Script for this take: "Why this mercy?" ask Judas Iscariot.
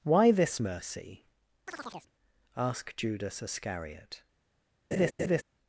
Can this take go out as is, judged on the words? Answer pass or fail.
pass